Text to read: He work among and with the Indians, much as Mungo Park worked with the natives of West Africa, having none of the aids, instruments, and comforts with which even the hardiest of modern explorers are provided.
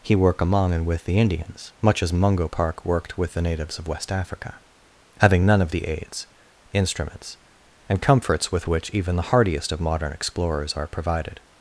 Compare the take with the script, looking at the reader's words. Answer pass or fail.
pass